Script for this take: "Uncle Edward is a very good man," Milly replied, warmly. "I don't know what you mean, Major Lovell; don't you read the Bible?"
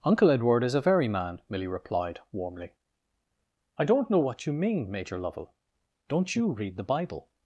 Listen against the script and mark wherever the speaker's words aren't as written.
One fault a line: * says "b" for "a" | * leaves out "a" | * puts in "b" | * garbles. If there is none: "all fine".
* leaves out "good"